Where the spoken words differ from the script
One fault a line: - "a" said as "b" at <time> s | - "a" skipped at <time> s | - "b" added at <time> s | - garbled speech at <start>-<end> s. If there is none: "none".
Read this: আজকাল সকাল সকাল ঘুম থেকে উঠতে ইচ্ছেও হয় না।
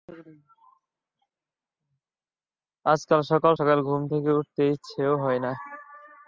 none